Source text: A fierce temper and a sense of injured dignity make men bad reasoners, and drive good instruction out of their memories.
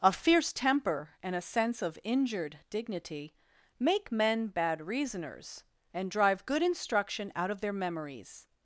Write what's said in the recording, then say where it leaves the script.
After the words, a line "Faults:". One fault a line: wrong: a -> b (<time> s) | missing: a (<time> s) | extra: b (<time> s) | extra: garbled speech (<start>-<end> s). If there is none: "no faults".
A fierce temper and a sense of injured dignity make men bad reasoners, and drive good instruction out of their memories.
Faults:
no faults